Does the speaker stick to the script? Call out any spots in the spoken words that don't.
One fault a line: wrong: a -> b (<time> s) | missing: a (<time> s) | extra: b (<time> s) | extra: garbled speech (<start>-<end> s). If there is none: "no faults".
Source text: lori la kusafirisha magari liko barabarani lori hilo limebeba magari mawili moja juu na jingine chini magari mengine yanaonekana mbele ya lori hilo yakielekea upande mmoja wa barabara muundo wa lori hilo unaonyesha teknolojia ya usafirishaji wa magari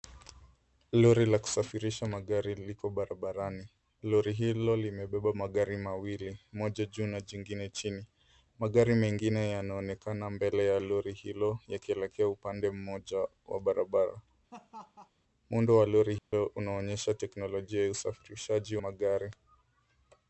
missing: wa (18.8 s)